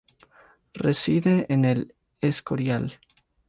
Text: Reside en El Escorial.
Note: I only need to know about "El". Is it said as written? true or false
true